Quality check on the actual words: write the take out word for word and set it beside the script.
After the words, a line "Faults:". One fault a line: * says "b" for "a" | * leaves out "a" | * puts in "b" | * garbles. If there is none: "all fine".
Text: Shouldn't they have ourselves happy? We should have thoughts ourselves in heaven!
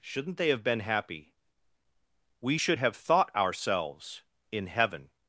Shouldn't they have been happy? We should have thought ourselves in heaven!
Faults:
* says "been" for "ourselves"
* says "thought" for "thoughts"